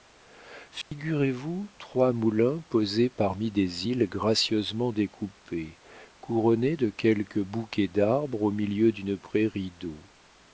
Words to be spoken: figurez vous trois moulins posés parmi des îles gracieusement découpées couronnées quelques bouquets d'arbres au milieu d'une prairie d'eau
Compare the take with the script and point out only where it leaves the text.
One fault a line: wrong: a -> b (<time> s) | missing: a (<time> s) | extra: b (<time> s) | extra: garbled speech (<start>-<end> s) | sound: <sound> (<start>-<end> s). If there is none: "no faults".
sound: dropout (0.8-0.9 s)
extra: de (6.7 s)